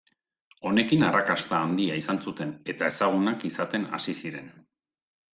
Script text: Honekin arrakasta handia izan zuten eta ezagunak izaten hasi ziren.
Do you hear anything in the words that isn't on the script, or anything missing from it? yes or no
no